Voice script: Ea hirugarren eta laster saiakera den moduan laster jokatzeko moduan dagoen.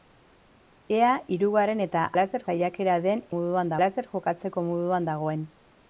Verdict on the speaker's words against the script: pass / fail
pass